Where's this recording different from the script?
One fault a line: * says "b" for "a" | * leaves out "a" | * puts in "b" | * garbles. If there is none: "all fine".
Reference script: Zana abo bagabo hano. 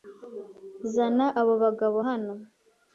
all fine